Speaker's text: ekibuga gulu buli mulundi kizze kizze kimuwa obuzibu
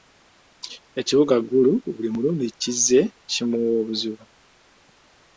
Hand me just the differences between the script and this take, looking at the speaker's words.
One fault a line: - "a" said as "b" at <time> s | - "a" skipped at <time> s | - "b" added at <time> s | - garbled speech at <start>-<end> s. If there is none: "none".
- "kizze" skipped at 3.0 s